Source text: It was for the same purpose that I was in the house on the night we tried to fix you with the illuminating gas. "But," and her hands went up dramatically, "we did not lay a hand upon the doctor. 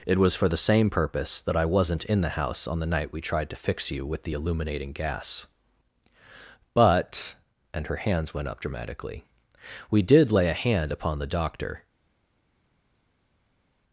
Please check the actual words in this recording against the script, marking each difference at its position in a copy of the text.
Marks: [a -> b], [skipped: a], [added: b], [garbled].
It was for the same purpose that I [was -> wasn't] in the house on the night we tried to fix you with the illuminating gas. "But," and her hands went up dramatically, "we did [skipped: not] lay a hand upon the doctor.